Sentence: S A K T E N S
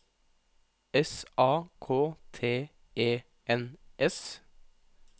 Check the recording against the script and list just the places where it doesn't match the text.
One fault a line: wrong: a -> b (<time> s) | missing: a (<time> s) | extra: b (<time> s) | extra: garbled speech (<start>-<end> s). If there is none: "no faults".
no faults